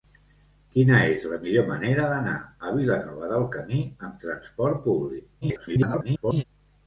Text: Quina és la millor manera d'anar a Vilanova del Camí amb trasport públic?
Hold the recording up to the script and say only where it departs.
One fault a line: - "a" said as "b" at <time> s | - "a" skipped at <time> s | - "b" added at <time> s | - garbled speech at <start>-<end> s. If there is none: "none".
- garbled speech at 5.4-6.4 s